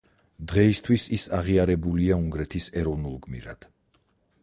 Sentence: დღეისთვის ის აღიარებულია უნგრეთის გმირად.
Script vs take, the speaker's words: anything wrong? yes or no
yes